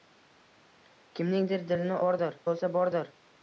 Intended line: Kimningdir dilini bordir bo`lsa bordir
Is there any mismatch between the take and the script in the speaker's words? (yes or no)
no